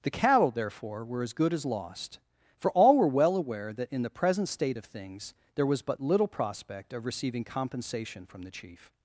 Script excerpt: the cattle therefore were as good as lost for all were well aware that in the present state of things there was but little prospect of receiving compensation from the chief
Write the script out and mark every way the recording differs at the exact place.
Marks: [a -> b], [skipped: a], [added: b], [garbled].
the cattle therefore were as good as lost for all were well aware that in the present state of things there was but little prospect of receiving compensation from the chief